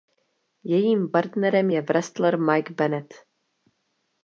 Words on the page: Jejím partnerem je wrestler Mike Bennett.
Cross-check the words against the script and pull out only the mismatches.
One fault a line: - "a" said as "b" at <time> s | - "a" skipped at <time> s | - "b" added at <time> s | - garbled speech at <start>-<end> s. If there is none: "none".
none